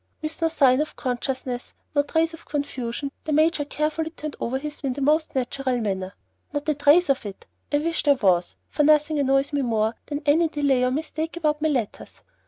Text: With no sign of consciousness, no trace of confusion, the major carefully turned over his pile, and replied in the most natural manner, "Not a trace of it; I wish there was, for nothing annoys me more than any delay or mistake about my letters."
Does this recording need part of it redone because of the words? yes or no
yes